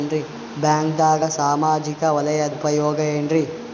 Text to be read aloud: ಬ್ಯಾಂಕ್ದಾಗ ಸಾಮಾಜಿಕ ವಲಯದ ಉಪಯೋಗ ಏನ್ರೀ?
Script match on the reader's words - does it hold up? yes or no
yes